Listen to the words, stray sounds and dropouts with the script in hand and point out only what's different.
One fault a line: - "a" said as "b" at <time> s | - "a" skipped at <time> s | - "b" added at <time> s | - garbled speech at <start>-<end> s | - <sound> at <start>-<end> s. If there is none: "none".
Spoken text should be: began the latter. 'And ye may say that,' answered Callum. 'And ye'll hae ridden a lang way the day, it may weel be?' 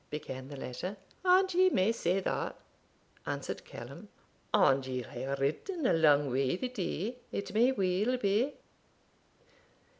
none